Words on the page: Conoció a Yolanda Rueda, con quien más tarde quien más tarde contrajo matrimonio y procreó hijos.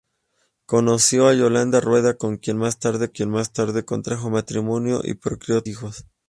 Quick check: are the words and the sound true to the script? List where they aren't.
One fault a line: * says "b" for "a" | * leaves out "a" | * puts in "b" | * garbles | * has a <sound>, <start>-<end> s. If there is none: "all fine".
all fine